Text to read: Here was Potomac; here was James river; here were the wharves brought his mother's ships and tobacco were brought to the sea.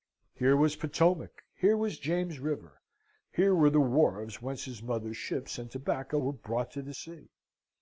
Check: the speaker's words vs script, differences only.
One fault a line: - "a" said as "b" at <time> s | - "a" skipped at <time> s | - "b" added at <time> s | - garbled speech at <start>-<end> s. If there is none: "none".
- "brought" said as "whence" at 4.4 s